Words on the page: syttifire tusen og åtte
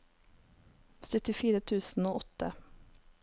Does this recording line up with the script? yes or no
yes